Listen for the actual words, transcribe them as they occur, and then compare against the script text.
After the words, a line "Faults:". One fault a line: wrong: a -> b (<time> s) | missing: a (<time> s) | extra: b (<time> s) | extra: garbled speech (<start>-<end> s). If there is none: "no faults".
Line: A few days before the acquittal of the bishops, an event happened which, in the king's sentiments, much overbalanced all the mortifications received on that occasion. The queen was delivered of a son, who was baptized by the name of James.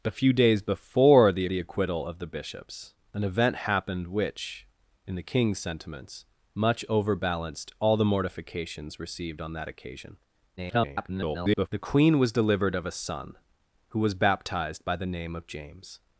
A few days before the the acquittal of the bishops, an event happened which, in the king's sentiments, much overbalanced all the mortifications received on that occasion. [garbled] The queen was delivered of a son, who was baptized by the name of James.
Faults:
extra: the (1.4 s)
extra: garbled speech (10.6-11.7 s)